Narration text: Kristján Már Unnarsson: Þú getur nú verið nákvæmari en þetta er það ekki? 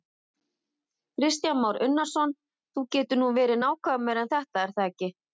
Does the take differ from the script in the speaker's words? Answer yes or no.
no